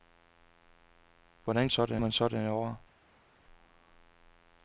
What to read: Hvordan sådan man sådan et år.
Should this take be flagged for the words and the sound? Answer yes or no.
no